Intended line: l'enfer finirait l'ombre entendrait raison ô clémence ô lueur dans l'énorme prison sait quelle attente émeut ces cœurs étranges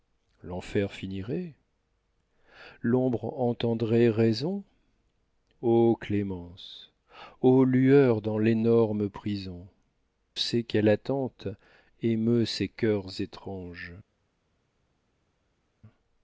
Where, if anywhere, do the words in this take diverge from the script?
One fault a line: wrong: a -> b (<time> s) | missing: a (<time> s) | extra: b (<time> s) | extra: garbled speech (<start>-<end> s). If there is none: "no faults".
no faults